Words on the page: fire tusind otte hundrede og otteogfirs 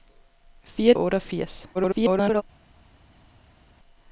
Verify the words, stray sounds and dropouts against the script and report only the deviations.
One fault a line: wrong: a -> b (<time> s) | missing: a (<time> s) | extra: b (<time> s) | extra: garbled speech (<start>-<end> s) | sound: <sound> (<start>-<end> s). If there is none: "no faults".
missing: tusind otte hundrede (0.9 s)
extra: garbled speech (1.7-2.4 s)